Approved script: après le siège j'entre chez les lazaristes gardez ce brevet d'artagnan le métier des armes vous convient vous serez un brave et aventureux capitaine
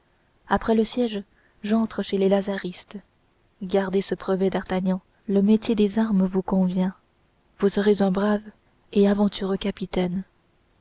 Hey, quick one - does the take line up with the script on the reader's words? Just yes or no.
yes